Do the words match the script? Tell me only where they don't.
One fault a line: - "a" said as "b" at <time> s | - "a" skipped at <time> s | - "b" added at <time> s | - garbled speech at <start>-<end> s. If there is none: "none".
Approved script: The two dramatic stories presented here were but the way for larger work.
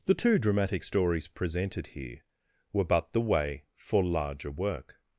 none